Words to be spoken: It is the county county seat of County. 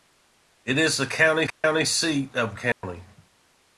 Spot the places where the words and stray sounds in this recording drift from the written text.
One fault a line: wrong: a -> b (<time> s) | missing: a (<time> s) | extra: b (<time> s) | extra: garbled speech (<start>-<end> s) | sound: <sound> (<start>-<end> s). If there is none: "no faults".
sound: dropout (1.5-1.6 s)
sound: dropout (2.7-2.8 s)